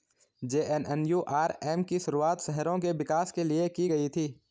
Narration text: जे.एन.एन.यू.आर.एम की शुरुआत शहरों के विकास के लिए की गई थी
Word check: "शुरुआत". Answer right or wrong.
right